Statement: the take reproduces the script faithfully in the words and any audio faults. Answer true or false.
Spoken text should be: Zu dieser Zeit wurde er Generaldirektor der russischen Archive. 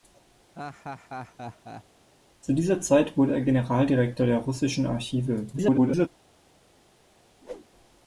false